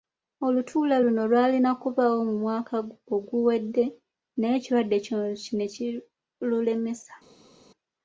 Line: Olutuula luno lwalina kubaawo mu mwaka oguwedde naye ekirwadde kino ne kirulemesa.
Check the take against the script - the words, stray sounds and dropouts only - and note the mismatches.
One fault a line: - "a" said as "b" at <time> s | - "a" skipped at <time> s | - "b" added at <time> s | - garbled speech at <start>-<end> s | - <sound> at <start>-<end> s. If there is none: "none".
none